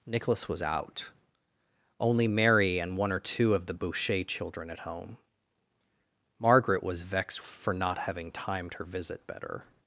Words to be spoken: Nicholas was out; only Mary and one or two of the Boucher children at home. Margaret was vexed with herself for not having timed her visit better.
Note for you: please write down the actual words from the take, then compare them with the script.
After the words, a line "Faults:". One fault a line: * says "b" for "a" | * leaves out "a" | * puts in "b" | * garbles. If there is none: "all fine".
Nicholas was out; only Mary and one or two of the Boucher children at home. Margaret was vexed for not having timed her visit better.
Faults:
* leaves out "with herself"